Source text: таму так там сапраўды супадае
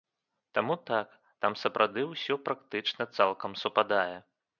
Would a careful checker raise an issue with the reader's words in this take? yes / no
yes